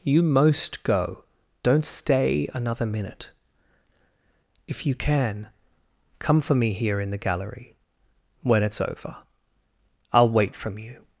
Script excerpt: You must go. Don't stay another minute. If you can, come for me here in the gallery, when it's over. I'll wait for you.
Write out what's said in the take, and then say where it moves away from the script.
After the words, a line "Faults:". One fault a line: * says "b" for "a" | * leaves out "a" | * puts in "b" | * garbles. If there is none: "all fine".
You most go. Don't stay another minute. If you can, come for me here in the gallery, when it's over. I'll wait from you.
Faults:
* says "most" for "must"
* says "from" for "for"